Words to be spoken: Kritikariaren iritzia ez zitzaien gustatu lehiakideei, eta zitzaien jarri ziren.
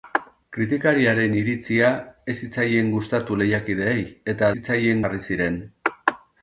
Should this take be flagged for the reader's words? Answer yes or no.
no